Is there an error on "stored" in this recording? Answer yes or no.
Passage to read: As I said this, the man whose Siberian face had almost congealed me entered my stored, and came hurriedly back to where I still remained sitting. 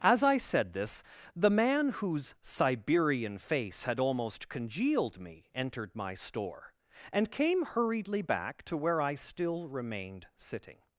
yes